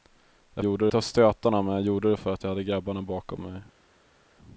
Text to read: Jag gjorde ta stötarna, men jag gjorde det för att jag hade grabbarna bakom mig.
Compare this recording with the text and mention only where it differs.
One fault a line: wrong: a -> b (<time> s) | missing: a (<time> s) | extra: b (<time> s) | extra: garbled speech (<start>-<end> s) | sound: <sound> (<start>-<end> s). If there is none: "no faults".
no faults